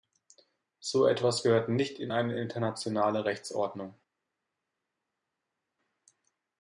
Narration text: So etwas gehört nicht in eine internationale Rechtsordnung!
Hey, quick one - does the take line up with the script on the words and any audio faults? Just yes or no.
yes